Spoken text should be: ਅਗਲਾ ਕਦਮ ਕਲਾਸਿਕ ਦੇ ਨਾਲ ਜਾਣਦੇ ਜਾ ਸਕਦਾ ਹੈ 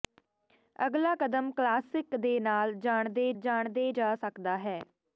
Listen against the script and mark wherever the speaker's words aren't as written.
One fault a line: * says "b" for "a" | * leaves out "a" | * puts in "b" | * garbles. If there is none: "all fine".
* puts in "ਜਾਣਦੇ"